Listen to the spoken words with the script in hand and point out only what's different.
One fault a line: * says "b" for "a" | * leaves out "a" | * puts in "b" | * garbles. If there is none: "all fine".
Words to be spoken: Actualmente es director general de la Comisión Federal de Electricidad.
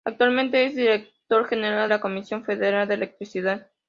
* leaves out "de"